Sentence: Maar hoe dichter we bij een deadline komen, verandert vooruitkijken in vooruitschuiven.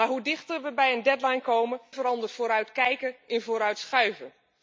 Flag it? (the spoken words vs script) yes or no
no